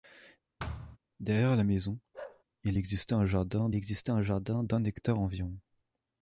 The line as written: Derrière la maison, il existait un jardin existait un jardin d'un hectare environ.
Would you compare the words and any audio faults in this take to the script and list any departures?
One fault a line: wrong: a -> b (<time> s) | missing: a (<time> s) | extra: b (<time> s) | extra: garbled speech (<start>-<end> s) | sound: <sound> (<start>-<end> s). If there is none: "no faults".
sound: thud (0.6-1.0 s)
sound: bark (2.1-2.4 s)